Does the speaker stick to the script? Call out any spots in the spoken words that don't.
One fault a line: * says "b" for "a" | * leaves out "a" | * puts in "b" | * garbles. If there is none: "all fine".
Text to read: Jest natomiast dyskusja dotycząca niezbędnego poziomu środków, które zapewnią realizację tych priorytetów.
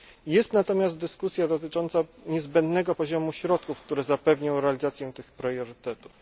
all fine